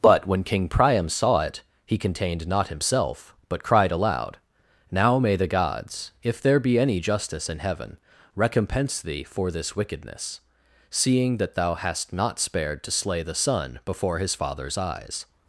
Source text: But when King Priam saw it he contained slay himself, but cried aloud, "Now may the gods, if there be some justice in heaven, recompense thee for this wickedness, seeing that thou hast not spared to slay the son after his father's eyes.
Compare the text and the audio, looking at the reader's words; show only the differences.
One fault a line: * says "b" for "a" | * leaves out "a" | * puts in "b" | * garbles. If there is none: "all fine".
* says "not" for "slay"
* says "any" for "some"
* says "before" for "after"